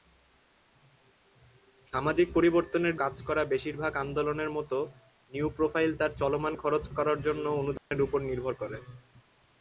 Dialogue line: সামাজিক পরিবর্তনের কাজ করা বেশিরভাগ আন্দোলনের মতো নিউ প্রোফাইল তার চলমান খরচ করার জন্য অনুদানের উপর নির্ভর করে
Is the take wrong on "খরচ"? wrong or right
right